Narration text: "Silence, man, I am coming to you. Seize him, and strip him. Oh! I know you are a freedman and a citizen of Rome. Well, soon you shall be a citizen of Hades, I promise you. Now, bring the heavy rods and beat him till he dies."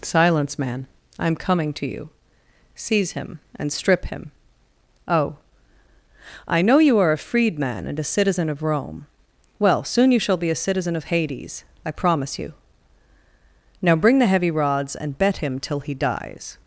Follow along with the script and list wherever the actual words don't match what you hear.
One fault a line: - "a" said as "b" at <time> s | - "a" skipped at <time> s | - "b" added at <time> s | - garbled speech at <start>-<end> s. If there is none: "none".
- "beat" said as "bet" at 15.2 s